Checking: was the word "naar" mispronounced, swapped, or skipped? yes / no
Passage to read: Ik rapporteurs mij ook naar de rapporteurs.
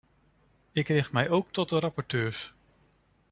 yes